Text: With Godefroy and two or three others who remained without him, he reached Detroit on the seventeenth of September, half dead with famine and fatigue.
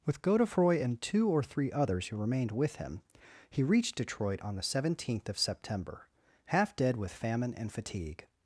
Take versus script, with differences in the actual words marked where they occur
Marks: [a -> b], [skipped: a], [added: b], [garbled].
With Godefroy and two or three others who remained [without -> with] him, he reached Detroit on the seventeenth of September, half dead with famine and fatigue.